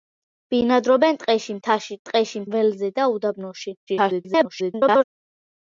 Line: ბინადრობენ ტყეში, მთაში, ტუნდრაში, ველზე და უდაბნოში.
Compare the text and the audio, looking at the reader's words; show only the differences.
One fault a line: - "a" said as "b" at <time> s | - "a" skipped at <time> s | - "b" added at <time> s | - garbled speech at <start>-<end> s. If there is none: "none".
- "ტუნდრაში" said as "ტყეში" at 2.1 s
- garbled speech at 3.9-5.0 s